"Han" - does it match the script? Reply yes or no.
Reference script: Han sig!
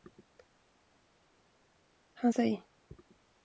yes